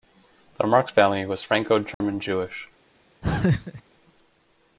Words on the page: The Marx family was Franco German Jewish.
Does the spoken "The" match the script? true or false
true